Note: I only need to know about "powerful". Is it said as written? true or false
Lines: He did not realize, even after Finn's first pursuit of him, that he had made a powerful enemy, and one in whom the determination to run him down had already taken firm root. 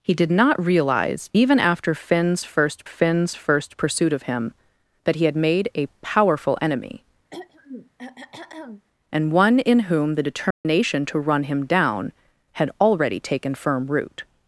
true